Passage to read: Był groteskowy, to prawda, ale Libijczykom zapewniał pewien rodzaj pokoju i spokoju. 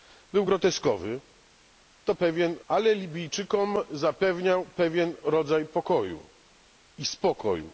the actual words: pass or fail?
fail